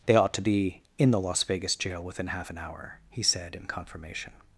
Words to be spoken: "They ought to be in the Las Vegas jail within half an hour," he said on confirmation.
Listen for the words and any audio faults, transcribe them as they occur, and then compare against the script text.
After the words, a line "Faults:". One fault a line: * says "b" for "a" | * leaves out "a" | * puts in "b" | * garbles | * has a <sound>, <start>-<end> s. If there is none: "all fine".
"They ought to be in the Las Vegas jail within half an hour," he said in confirmation.
Faults:
* says "in" for "on"